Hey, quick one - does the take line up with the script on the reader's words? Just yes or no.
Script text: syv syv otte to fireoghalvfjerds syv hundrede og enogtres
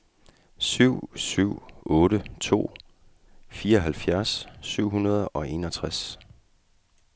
yes